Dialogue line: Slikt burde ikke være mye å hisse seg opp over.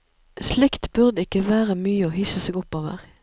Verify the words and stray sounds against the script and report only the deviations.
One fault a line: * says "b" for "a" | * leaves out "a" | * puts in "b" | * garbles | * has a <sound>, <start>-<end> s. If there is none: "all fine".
all fine